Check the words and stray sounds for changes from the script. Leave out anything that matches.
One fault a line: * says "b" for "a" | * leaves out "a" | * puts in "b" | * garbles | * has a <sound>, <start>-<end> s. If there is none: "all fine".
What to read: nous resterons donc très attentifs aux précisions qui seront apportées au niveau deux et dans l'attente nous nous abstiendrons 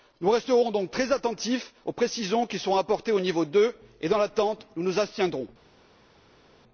all fine